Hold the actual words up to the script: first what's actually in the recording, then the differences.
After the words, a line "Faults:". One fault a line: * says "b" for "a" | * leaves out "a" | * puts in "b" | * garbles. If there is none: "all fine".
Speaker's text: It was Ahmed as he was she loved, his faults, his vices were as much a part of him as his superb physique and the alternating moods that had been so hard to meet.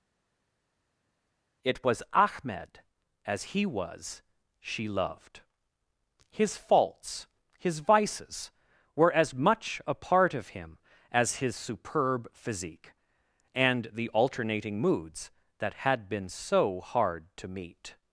It was Ahmed as he was she loved, his faults, his vices were as much a part of him as his superb physique and the alternating moods that had been so hard to meet.
Faults:
all fine